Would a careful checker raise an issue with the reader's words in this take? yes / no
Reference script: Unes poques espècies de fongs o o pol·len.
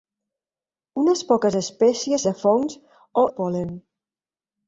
no